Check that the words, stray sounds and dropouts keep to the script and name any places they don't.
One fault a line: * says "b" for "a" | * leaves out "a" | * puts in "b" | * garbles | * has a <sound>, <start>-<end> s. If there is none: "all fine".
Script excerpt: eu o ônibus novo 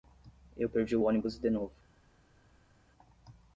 * puts in "perdi"
* puts in "de"